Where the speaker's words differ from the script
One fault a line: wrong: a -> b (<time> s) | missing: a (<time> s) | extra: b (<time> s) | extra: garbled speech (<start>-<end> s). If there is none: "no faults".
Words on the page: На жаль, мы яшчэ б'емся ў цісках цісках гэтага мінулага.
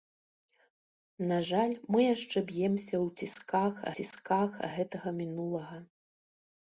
no faults